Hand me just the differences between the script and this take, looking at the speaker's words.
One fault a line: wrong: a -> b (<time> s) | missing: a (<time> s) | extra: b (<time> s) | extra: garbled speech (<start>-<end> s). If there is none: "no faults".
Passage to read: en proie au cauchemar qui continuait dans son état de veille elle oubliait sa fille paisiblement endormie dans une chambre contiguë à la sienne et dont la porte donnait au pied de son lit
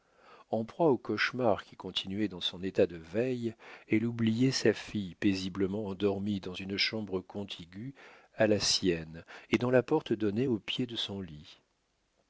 no faults